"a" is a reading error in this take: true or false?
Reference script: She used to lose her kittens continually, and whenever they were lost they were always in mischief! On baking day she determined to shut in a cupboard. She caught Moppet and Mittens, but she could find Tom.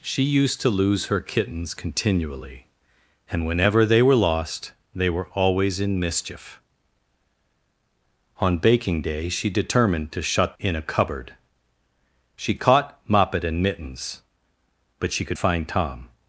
false